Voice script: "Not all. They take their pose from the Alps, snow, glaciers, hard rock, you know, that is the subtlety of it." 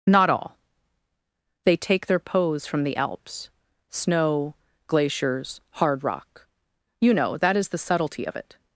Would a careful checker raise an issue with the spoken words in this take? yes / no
no